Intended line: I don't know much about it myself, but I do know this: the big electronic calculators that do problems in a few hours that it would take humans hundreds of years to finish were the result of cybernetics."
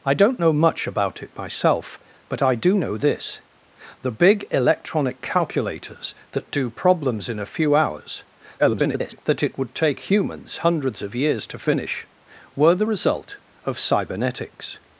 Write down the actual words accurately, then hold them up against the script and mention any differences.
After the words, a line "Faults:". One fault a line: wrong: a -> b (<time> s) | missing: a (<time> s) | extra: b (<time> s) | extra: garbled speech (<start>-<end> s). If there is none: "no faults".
I don't know much about it myself, but I do know this: the big electronic calculators that do problems in a few hours [garbled] that it would take humans hundreds of years to finish were the result of cybernetics."
Faults:
extra: garbled speech (8.6-9.2 s)